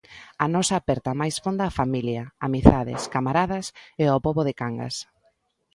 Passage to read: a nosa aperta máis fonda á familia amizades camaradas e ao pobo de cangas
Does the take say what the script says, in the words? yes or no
yes